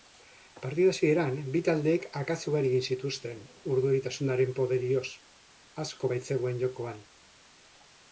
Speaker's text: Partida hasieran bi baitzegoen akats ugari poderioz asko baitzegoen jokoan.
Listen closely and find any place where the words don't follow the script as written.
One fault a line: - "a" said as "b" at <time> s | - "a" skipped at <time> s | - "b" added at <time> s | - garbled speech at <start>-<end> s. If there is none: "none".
- "baitzegoen" said as "taldeek" at 1.6 s
- "egin zituzten urduritasunaren" added at 2.7 s